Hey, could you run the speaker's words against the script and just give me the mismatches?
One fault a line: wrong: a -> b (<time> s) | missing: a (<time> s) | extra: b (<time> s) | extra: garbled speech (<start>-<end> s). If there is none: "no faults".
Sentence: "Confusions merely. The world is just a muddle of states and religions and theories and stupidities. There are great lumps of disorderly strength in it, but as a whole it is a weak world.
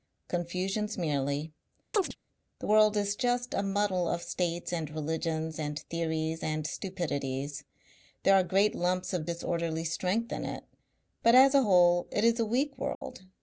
no faults